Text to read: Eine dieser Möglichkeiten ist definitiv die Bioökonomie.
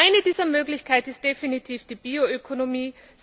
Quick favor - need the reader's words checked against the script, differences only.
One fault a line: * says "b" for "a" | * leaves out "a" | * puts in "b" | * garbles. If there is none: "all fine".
all fine